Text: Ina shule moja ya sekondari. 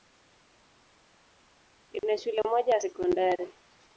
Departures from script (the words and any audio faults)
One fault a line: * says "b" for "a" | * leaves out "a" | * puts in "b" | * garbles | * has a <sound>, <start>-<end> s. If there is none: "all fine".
all fine